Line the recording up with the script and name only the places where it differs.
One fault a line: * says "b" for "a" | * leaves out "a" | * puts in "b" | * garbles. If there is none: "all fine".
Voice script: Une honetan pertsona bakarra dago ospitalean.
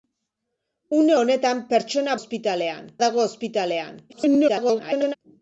* says "ospitalean" for "bakarra"
* garbles